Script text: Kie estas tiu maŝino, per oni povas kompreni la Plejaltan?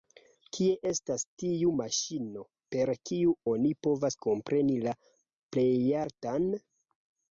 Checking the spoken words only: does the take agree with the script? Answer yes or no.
no